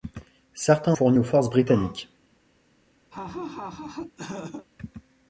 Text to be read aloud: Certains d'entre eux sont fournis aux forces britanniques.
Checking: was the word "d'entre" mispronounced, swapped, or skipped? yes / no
yes